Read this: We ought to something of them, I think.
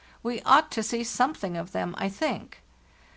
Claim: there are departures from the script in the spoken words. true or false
true